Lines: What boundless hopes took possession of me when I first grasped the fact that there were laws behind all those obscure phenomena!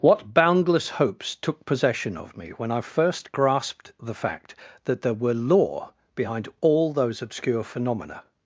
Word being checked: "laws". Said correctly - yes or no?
no